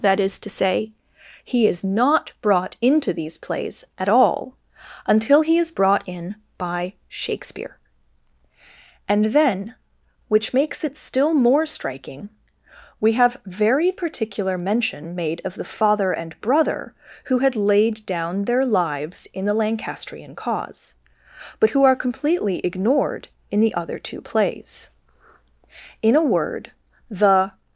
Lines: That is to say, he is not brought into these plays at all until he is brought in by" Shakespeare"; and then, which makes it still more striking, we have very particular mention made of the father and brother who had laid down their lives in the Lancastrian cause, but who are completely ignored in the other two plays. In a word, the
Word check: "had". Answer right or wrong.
right